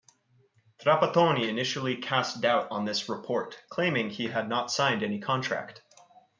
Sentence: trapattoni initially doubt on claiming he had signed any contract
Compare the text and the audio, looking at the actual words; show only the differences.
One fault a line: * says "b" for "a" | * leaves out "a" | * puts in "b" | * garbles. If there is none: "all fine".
* puts in "cast"
* puts in "this report"
* puts in "not"